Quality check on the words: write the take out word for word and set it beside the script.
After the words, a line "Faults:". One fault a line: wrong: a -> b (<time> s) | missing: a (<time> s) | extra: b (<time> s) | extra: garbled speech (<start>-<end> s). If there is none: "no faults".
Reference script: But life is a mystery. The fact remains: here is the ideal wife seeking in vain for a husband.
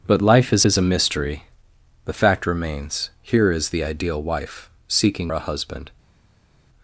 But life is is a mystery. The fact remains: here is the ideal wife seeking a husband.
Faults:
extra: is (0.6 s)
missing: in vain for (5.3 s)